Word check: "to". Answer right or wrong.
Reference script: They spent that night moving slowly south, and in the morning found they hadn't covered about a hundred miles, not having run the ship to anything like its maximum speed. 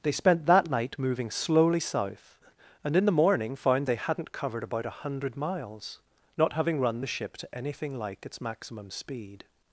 right